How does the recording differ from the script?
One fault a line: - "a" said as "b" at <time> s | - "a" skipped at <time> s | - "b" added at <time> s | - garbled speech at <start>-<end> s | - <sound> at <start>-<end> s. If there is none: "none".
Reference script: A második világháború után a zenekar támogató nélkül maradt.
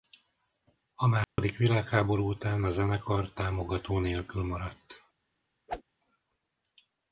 - dropout at 1.2-1.4 s
- whoosh at 5.7-5.8 s